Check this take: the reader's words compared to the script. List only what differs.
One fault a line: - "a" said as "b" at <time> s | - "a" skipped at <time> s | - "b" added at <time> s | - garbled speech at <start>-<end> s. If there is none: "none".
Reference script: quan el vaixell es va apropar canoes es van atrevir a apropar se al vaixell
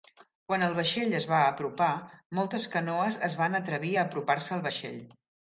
- "moltes" added at 2.4 s